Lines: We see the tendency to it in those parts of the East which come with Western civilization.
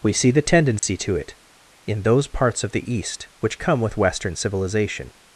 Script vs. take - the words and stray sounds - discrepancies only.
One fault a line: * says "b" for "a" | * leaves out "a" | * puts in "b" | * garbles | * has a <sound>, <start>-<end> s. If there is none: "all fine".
* has a dropout, 0.8-0.8 s